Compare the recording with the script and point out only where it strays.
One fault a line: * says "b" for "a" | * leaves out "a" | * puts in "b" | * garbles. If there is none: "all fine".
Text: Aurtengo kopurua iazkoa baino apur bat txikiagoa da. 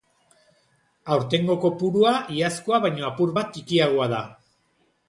all fine